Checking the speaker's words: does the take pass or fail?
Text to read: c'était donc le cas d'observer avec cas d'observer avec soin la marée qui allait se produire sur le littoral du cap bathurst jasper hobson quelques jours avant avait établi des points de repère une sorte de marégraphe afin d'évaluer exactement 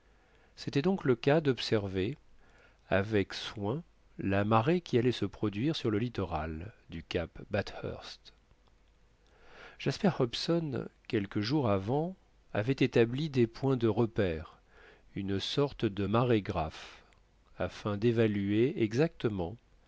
fail